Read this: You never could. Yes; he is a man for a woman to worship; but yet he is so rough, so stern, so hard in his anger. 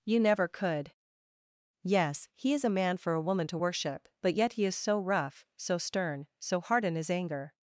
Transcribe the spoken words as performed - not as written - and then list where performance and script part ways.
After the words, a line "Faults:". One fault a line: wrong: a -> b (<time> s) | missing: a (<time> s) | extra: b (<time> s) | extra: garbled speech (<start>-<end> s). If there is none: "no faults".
You never could. Yes; he is a man for a woman to worship; but yet he is so rough, so stern, so hard in his anger.
Faults:
no faults